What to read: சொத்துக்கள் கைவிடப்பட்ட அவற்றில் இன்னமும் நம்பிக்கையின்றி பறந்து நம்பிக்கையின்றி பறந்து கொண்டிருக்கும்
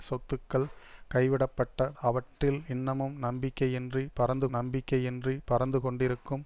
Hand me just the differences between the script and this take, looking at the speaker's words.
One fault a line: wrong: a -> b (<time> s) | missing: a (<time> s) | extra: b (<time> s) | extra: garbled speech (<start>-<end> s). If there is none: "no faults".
no faults